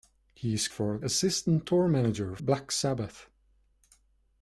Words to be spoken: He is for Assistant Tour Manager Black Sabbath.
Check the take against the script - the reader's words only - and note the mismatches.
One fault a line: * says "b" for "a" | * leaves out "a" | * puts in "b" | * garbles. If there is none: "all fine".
all fine